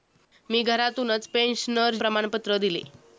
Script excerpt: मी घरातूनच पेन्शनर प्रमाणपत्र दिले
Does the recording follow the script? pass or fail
pass